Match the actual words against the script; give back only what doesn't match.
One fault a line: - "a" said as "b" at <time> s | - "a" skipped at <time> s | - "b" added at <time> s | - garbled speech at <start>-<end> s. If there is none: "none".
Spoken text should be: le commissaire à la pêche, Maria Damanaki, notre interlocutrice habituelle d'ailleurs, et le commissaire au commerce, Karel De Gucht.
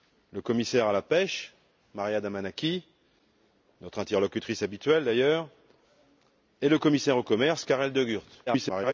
- garbled speech at 8.5-8.9 s